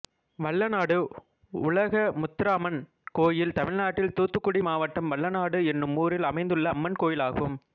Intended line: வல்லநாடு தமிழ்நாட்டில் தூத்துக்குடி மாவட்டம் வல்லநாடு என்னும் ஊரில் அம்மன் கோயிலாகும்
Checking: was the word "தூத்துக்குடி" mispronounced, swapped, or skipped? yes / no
no